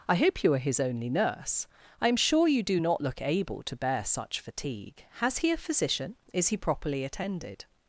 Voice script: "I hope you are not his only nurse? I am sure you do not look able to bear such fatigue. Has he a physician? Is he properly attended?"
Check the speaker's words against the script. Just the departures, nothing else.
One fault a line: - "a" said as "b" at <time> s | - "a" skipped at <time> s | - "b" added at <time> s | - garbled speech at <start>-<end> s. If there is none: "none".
- "not" skipped at 0.6 s